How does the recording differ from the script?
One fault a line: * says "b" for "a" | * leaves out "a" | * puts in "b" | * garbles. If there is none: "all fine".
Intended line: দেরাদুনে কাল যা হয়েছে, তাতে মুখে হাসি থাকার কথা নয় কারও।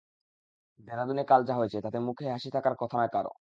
all fine